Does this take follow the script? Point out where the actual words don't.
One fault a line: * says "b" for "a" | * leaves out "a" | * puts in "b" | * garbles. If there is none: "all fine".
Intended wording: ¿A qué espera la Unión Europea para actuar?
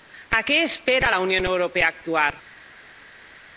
all fine